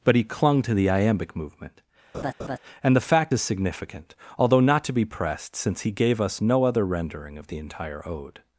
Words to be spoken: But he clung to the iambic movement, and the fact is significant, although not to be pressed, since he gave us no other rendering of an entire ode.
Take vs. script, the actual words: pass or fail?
fail